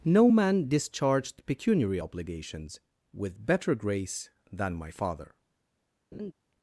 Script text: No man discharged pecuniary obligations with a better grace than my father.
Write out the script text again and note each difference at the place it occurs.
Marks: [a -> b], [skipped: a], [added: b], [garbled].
No man discharged pecuniary obligations with [skipped: a] better grace than my father.